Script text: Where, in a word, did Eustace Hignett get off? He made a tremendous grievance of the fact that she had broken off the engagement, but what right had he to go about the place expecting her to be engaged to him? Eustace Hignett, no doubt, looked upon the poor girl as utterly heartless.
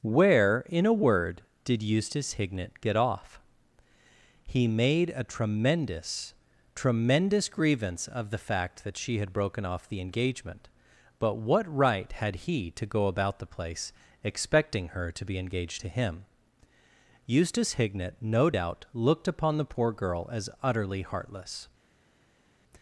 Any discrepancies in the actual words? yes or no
yes